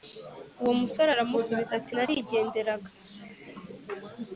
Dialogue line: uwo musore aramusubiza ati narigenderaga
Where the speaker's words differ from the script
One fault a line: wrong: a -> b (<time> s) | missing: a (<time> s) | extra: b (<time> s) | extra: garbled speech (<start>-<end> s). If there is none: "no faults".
no faults